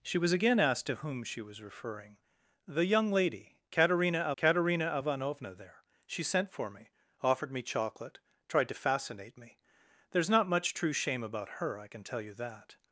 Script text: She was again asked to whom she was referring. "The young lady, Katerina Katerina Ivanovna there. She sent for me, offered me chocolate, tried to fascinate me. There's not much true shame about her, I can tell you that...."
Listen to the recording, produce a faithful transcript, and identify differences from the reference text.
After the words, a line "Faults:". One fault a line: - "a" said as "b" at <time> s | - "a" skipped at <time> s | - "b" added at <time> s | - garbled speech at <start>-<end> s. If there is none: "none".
She was again asked to whom she was referring. "The young lady, Katerina Katerina Ivanovna there. She sent for me, offered me chocolate, tried to fascinate me. There's not much true shame about her, I can tell you that...."
Faults:
none